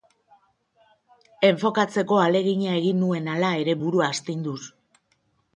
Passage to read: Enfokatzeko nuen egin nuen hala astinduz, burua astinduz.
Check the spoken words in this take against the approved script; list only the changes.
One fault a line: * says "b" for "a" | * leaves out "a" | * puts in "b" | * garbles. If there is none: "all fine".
* says "ahalegina" for "nuen"
* says "ere" for "astinduz"